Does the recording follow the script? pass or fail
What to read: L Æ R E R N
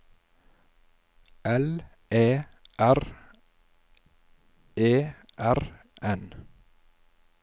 pass